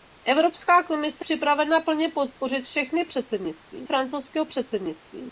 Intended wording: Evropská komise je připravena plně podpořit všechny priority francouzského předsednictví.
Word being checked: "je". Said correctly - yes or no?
no